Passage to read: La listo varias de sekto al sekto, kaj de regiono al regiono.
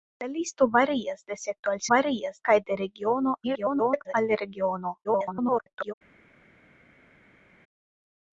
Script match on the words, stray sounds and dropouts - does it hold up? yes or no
no